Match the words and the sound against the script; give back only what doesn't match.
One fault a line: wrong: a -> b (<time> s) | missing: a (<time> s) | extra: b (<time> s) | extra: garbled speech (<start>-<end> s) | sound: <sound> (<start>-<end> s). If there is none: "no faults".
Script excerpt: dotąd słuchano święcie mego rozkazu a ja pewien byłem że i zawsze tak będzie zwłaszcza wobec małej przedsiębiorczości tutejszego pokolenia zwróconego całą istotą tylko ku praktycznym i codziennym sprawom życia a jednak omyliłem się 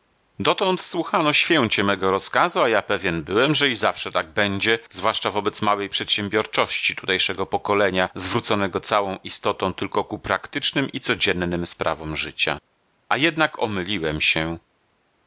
no faults